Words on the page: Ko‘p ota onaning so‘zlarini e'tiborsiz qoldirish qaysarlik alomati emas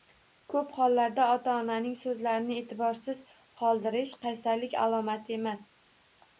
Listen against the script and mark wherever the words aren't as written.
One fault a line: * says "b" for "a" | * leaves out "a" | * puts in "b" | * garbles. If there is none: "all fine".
* puts in "hollarda"